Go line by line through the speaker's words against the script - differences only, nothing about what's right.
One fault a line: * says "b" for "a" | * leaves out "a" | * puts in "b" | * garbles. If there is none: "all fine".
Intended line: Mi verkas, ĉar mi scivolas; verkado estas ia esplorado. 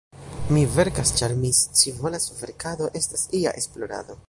all fine